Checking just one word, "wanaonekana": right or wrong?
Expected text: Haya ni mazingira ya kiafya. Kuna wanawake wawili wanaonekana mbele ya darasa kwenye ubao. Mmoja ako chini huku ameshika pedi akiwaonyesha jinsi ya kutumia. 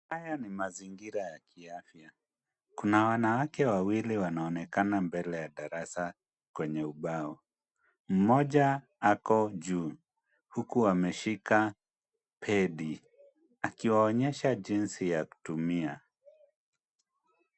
right